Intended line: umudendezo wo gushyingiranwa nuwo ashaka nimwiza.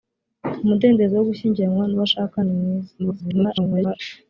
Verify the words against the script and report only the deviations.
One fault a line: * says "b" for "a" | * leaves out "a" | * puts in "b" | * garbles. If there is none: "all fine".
* garbles